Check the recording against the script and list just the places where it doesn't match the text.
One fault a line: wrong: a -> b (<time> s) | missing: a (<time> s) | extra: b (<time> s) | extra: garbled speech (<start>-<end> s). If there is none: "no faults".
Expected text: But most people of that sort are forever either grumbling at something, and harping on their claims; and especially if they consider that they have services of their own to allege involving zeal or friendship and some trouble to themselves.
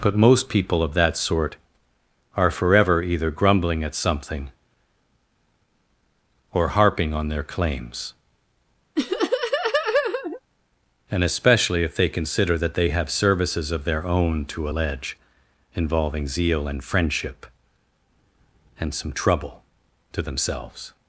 wrong: and -> or (6.5 s)
wrong: or -> and (16.7 s)